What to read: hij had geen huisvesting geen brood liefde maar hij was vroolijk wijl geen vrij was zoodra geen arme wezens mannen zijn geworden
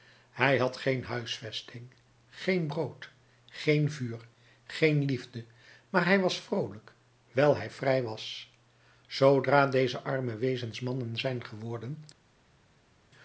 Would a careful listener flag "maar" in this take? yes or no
no